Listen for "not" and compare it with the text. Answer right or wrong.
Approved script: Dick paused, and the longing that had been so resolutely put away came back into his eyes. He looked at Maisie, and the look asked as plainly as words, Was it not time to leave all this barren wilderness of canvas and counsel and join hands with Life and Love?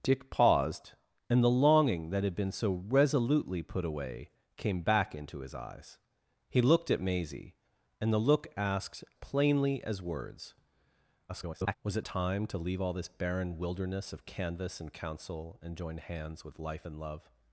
wrong